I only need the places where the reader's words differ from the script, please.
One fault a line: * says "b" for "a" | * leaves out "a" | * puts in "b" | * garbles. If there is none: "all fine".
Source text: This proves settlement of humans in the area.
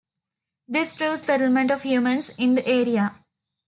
all fine